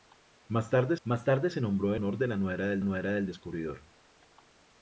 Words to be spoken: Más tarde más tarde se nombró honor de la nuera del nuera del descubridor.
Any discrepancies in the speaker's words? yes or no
no